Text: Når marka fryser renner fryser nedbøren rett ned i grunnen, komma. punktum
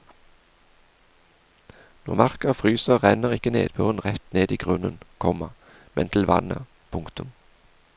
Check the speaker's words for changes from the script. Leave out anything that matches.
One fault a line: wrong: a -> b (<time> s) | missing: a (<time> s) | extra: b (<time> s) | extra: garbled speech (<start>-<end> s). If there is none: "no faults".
wrong: fryser -> ikke (3.4 s)
extra: men til vannet (5.9 s)